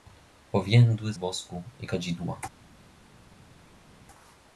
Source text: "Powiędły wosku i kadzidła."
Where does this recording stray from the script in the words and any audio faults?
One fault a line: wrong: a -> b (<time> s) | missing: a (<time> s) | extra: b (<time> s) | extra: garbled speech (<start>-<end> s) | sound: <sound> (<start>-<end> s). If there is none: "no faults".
no faults